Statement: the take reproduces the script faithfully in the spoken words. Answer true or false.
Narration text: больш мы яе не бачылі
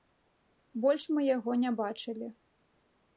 false